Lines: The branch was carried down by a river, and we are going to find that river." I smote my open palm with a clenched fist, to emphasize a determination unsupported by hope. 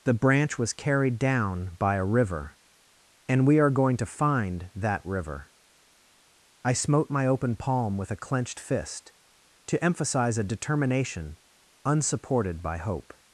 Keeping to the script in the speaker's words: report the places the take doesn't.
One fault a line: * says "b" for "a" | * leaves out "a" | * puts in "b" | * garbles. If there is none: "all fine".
all fine